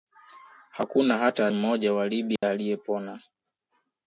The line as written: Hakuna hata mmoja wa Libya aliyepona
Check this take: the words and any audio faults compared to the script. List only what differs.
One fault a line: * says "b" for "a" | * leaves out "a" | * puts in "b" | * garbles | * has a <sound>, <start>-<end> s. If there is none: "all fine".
* has a dropout, 2.4-2.4 s